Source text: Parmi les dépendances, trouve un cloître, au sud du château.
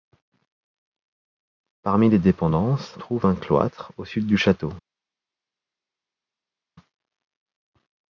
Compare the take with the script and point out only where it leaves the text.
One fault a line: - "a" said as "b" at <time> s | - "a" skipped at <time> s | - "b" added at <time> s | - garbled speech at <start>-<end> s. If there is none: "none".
none